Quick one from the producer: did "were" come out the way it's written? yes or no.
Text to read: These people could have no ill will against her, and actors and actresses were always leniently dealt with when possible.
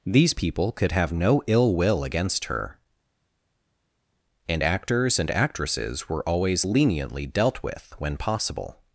yes